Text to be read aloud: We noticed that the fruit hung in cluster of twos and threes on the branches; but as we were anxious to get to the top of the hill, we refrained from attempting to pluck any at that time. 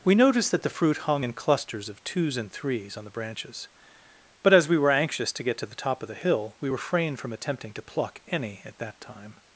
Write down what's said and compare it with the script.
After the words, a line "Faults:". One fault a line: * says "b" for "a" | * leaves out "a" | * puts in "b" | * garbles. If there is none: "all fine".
We noticed that the fruit hung in clusters of twos and threes on the branches; but as we were anxious to get to the top of the hill, we refrained from attempting to pluck any at that time.
Faults:
* says "clusters" for "cluster"